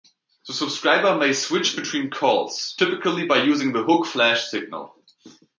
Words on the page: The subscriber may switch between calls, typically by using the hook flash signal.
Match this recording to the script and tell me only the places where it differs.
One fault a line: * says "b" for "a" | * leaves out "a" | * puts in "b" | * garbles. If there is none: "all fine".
all fine